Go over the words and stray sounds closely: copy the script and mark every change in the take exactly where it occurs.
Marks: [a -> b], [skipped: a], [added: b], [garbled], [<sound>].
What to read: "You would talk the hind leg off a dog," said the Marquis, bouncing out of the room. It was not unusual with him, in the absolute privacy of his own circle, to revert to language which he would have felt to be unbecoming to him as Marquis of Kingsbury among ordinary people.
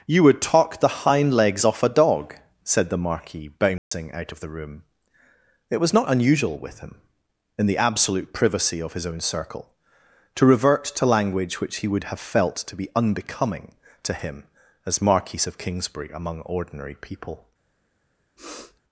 "You would talk the hind [leg -> legs] off a dog," said the Marquis, bouncing [dropout] out of the room. It was not unusual with him, in the absolute privacy of his own circle, to revert to language which he would have felt to be unbecoming to him as Marquis of Kingsbury among ordinary people. [sniff]